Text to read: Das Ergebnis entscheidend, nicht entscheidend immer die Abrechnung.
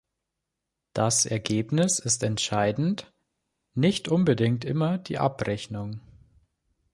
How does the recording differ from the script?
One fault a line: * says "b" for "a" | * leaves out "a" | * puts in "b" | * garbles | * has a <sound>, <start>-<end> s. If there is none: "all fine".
* puts in "ist"
* says "unbedingt" for "entscheidend"